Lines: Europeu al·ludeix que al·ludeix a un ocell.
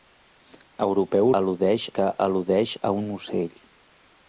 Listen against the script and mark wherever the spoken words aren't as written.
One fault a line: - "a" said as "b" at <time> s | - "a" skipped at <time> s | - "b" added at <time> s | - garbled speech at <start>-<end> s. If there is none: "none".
none